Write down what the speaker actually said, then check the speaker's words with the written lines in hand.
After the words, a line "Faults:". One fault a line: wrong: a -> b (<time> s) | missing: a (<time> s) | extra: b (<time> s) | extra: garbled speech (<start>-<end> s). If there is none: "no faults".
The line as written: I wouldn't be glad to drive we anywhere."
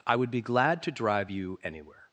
I would be glad to drive you anywhere."
Faults:
wrong: wouldn't -> would (0.1 s)
wrong: we -> you (1.3 s)